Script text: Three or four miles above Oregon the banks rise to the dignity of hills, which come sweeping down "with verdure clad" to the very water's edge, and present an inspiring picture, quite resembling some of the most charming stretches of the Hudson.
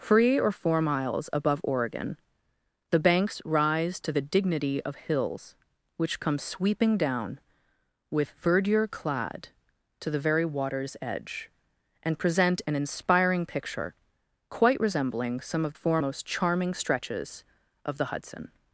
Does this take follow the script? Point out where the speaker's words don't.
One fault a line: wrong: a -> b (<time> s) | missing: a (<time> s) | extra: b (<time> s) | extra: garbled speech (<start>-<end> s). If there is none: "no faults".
wrong: the -> four (15.7 s)